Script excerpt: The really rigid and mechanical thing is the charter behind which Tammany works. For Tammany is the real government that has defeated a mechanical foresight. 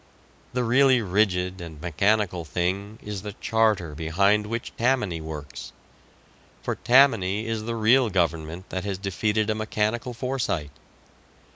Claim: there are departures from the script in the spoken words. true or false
false